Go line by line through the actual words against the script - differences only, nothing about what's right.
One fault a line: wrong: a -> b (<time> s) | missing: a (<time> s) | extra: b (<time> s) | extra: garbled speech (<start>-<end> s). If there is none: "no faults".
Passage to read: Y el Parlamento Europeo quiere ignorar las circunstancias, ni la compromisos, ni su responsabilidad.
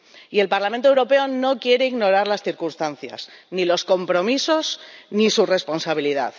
extra: no (1.3 s)
wrong: la -> los (3.6 s)